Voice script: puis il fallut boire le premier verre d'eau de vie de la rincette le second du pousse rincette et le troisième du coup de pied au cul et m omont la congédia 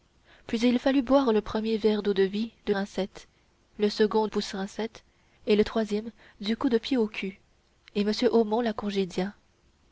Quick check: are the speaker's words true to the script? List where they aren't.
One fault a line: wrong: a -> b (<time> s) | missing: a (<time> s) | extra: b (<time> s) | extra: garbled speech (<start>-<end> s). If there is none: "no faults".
missing: la (2.7 s)
missing: du (4.3 s)